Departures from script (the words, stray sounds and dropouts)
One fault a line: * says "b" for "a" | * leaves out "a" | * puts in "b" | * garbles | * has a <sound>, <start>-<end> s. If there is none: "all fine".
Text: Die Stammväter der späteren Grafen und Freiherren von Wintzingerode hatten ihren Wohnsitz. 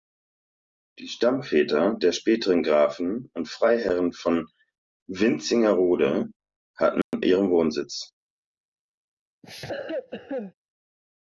* has a dropout, 7.0-7.1 s
* has a cough, 9.4-10.5 s